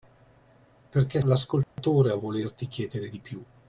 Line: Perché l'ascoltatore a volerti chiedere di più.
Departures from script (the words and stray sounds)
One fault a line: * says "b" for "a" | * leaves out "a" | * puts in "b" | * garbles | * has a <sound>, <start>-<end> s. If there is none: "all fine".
* has a dropout, 1.6-1.8 s